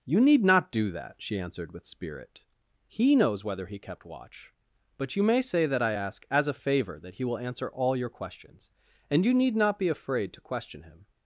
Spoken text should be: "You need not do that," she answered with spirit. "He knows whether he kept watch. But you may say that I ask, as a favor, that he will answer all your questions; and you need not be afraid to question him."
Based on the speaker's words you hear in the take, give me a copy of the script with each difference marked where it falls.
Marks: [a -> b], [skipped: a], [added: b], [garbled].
"You need not do that," she answered with spirit. "He knows whether he kept watch. But you may say that I ask, as a favor, that he will answer all your questions; and you need not be afraid to question him."